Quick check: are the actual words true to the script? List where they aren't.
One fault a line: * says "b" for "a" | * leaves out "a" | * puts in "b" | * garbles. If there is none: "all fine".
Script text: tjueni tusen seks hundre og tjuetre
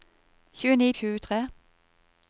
* leaves out "tusen seks hundre"